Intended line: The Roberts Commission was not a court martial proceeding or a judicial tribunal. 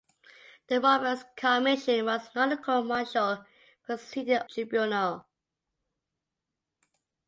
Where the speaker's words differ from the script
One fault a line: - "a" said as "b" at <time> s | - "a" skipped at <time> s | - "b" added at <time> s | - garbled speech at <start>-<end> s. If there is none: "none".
- "or a judicial" skipped at 4.4 s